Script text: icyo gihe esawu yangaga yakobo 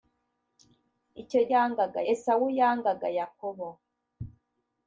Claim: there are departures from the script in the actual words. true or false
true